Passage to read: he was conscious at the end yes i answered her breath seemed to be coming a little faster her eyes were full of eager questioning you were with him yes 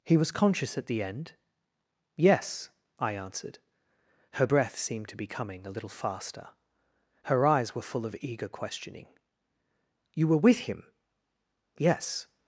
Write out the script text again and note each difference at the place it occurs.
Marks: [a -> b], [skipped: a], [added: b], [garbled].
he was conscious at the end yes i answered her breath seemed to be coming a little faster her eyes were full of eager questioning you were with him yes